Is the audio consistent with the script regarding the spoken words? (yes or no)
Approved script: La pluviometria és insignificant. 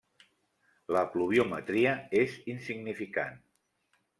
yes